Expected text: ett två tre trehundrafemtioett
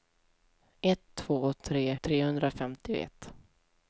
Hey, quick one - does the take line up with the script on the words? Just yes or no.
yes